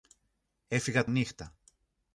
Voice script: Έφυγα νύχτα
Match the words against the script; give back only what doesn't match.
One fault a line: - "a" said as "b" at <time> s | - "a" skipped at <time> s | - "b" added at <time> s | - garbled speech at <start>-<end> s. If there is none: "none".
none